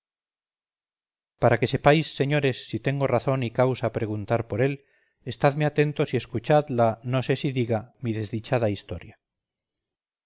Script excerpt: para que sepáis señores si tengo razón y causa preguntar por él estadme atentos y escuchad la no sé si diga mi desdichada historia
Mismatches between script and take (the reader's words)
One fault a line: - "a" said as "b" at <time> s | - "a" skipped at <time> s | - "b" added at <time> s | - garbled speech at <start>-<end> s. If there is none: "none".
none